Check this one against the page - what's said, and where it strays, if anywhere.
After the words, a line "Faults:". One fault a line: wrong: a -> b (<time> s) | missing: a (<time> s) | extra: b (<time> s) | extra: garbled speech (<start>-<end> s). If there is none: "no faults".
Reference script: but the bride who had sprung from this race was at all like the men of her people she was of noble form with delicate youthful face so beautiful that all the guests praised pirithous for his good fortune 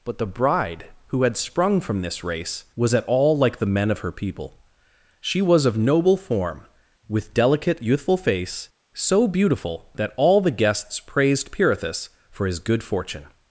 but the bride who had sprung from this race was at all like the men of her people she was of noble form with delicate youthful face so beautiful that all the guests praised pirithous for his good fortune
Faults:
no faults